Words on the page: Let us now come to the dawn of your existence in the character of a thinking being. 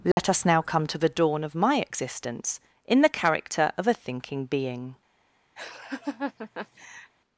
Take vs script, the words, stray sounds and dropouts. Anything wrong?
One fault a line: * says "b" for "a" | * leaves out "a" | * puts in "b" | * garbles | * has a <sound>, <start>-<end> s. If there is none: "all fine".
* has a dropout, 0.1-0.2 s
* says "my" for "your"
* has a laugh, 5.6-7.1 s